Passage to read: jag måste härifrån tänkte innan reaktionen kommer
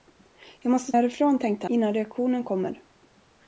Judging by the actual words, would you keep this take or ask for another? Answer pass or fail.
pass